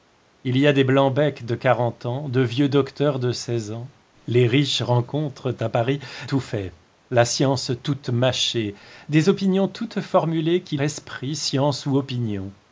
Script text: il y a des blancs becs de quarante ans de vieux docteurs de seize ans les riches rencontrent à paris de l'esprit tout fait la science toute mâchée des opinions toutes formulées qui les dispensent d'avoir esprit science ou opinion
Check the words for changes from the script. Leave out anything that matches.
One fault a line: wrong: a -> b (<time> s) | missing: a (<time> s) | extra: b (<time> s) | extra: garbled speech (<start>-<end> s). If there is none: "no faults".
missing: de l'esprit (6.0 s)
missing: les dispensent d'avoir (10.8 s)